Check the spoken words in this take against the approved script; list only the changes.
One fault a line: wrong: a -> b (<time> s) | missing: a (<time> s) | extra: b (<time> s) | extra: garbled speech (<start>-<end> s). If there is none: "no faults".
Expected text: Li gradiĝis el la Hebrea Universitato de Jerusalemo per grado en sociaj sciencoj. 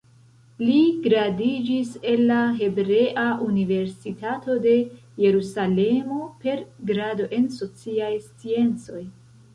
no faults